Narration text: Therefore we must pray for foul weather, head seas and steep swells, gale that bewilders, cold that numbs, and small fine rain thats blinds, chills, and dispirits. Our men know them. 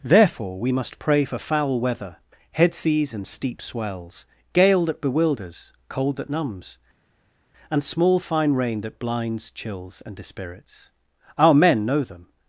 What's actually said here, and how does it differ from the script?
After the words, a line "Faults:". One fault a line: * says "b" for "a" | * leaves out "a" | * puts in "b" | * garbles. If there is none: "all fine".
Therefore we must pray for foul weather, head seas and steep swells, gale that bewilders, cold that numbs, and small fine rain that blinds, chills, and dispirits. Our men know them.
Faults:
* says "that" for "thats"